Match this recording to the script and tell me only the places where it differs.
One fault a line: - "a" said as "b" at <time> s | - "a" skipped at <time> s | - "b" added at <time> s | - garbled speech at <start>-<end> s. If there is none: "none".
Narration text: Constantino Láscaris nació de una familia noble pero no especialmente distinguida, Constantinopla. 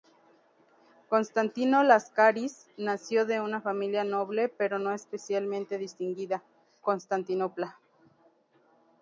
none